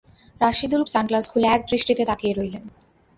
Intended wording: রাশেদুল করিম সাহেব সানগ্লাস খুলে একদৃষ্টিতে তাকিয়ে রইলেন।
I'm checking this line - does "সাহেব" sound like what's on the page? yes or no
no